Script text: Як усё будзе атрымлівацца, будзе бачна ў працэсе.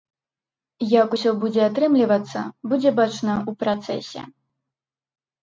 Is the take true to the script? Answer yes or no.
yes